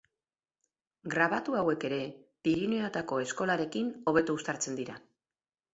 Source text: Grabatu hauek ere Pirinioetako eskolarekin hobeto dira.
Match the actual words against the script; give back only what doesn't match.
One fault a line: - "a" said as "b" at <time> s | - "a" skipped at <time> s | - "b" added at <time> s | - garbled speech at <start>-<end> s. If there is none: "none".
- "uztartzen" added at 4.4 s